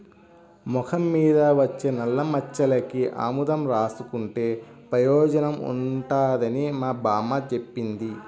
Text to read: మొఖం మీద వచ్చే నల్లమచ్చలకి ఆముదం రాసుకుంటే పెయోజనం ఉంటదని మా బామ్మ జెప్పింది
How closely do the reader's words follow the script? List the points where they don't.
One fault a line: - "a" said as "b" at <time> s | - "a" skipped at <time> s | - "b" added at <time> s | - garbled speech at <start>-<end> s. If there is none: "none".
none